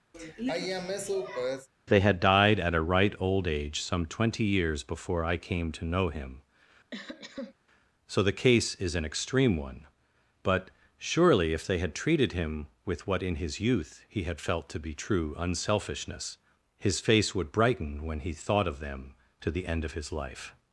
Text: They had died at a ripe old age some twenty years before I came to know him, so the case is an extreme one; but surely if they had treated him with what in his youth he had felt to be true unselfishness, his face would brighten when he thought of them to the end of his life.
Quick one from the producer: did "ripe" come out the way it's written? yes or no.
no